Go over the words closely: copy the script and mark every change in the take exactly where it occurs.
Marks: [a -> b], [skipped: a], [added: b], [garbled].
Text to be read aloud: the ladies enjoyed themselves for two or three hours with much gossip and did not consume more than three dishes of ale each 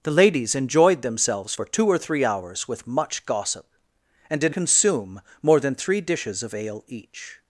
the ladies enjoyed themselves for two or three hours with much gossip and did [skipped: not] consume more than three dishes of ale each